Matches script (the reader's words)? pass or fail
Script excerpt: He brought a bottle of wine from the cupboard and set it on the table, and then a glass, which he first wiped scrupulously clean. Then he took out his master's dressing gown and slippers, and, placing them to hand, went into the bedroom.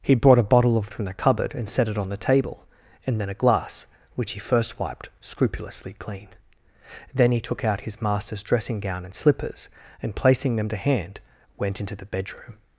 fail